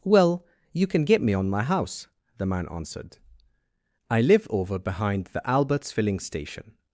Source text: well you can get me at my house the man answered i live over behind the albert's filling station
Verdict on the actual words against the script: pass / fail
fail